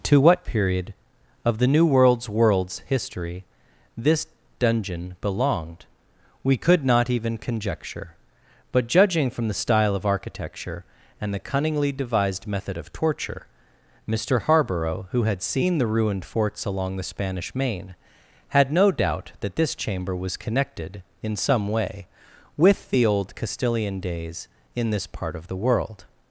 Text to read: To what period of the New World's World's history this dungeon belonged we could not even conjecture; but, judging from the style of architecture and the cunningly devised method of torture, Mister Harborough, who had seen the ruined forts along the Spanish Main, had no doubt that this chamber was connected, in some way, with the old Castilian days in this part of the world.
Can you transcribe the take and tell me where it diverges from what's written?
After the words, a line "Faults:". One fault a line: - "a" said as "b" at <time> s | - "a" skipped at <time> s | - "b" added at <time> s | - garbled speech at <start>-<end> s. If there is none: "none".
To what period of the New World's World's history this dungeon belonged we could not even conjecture; but, judging from the style of architecture and the cunningly devised method of torture, Mister Harborough, who had seen the ruined forts along the Spanish Main, had no doubt that this chamber was connected, in some way, with the old Castilian days in this part of the world.
Faults:
none